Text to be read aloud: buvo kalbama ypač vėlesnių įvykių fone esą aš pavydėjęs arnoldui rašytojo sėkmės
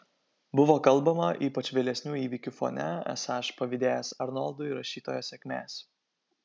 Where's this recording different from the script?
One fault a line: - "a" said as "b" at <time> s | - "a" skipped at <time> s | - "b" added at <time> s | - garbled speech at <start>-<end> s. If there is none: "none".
none